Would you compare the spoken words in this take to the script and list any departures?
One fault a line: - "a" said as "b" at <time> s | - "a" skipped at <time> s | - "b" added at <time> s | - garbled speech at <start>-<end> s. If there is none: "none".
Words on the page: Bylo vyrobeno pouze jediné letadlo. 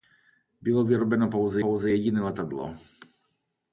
- "pouze" added at 1.6 s